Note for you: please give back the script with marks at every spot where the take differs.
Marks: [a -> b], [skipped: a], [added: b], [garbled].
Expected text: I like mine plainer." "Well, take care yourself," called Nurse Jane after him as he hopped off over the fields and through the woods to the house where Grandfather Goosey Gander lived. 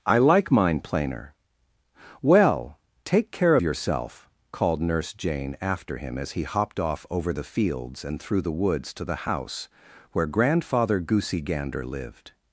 I like mine plainer." "Well, take care yourself," called Nurse Jane after him as he hopped off over the fields and through the woods to the house where Grandfather Goosey Gander lived.